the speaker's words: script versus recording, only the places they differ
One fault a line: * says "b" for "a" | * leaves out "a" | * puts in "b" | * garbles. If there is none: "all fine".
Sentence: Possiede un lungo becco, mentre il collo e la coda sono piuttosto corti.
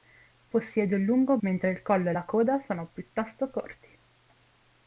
* leaves out "becco"